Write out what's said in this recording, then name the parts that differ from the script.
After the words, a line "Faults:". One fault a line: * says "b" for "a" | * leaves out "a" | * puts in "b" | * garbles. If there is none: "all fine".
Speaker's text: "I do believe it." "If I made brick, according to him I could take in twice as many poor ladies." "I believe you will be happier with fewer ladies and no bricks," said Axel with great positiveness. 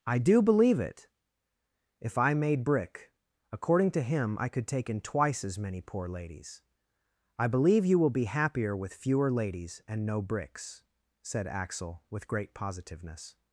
"I do believe it." "If I made brick, according to him I could take in twice as many poor ladies." "I believe you will be happier with fewer ladies and no bricks," said Axel with great positiveness.
Faults:
all fine